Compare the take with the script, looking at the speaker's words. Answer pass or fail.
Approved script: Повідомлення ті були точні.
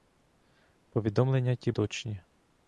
fail